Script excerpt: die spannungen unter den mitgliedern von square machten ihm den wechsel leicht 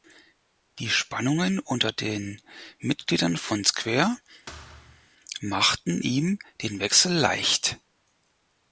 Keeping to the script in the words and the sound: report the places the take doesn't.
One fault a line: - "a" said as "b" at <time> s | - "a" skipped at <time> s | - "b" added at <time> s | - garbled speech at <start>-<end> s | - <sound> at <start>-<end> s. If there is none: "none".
- thud at 4.5-5.1 s